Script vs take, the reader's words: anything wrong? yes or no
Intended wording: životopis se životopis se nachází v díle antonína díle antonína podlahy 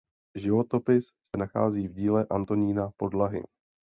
yes